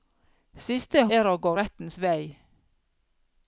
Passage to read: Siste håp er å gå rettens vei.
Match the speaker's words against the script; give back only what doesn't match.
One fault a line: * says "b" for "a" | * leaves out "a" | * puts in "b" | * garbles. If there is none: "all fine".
* leaves out "håp"